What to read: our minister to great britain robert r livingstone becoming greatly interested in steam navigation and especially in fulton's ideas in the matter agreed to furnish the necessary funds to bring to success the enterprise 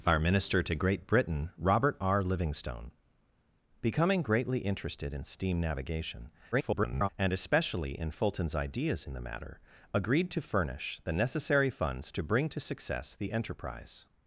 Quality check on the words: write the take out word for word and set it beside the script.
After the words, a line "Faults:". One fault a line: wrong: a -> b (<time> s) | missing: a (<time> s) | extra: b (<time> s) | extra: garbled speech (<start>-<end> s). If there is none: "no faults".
our minister to great britain robert r livingstone becoming greatly interested in steam navigation [garbled] and especially in fulton's ideas in the matter agreed to furnish the necessary funds to bring to success the enterprise
Faults:
extra: garbled speech (6.5-7.1 s)